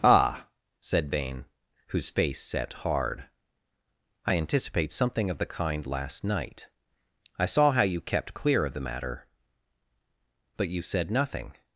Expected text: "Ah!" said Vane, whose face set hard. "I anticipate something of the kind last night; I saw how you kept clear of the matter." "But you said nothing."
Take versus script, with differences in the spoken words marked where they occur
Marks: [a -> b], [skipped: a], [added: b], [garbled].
"Ah!" said Vane, whose face set hard. "I anticipate something of the kind last night; I saw how you kept clear of the matter." "But you said nothing."